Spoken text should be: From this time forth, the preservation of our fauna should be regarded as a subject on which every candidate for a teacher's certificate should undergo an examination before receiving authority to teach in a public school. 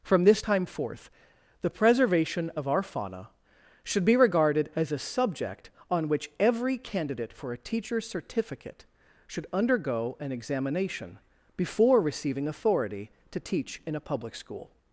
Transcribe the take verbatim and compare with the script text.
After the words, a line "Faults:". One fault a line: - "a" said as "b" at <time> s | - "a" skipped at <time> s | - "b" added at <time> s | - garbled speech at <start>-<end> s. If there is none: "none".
From this time forth, the preservation of our fauna should be regarded as a subject on which every candidate for a teacher's certificate should undergo an examination before receiving authority to teach in a public school.
Faults:
none